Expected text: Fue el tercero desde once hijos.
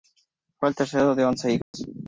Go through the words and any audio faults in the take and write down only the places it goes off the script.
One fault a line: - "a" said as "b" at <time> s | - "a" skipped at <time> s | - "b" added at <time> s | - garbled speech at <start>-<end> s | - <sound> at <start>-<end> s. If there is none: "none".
- "desde" said as "de" at 1.1 s
- dropout at 1.6-1.7 s